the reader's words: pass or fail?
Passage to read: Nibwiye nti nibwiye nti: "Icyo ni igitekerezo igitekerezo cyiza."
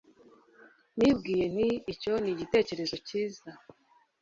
fail